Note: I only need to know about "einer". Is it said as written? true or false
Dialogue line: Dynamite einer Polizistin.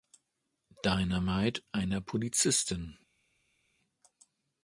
true